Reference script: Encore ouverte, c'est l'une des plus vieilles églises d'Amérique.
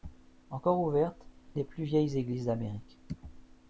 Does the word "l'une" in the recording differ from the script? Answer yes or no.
yes